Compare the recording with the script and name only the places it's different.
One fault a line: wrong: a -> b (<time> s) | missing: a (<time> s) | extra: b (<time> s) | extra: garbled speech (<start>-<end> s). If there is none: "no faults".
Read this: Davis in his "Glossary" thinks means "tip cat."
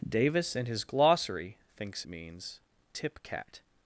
no faults